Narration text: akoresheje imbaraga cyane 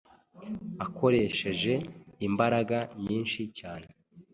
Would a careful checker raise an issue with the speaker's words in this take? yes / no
yes